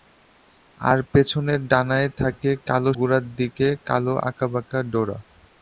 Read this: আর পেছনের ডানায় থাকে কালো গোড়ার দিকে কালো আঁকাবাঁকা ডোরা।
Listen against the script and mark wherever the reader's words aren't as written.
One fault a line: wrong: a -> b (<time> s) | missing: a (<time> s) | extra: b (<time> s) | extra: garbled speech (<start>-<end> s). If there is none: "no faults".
no faults